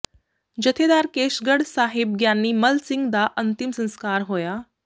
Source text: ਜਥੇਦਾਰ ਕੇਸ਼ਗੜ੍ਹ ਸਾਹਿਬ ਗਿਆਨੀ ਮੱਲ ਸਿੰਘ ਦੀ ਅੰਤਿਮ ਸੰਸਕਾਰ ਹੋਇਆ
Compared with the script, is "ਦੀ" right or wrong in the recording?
wrong